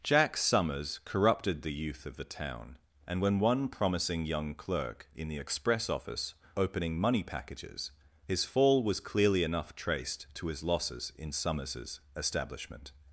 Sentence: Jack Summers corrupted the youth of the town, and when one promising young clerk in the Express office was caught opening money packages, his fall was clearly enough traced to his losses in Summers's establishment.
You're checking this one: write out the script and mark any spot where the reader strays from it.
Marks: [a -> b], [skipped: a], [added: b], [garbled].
Jack Summers corrupted the youth of the town, and when one promising young clerk in the Express office [skipped: was caught] opening money packages, his fall was clearly enough traced to his losses in Summers's establishment.